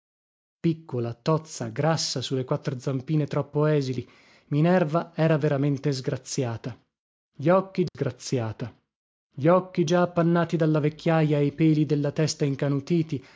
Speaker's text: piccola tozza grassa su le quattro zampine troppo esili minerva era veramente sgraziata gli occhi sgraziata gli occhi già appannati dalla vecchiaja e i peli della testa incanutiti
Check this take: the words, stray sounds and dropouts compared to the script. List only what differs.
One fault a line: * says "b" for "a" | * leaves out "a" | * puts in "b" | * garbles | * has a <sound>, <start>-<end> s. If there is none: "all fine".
* has a dropout, 7.9-7.9 s